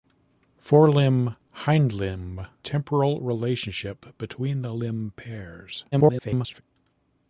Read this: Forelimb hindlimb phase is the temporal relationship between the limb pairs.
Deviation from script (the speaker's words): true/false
true